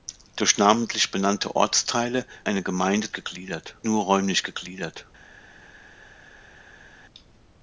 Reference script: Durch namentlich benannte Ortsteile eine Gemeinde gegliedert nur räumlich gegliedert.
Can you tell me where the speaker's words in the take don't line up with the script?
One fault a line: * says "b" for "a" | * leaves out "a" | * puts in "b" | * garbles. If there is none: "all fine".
all fine